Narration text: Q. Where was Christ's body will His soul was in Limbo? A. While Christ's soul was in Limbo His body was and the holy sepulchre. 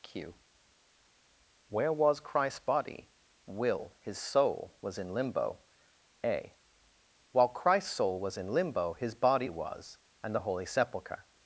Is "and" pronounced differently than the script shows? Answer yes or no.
no